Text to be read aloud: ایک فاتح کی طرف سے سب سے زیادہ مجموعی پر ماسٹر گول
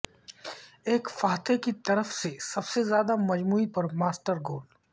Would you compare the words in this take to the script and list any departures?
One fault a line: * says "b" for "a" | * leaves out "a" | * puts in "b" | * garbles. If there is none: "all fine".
all fine